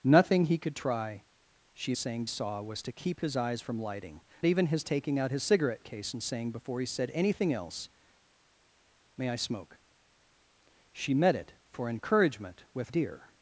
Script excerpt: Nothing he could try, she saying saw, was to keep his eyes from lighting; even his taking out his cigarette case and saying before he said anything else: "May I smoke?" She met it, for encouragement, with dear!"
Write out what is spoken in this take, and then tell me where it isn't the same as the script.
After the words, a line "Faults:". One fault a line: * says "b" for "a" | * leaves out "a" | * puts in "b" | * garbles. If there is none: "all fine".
Nothing he could try, she saying saw, was to keep his eyes from lighting; even his taking out his cigarette case and saying before he said anything else: "May I smoke?" She met it, for encouragement, with dear!"
Faults:
all fine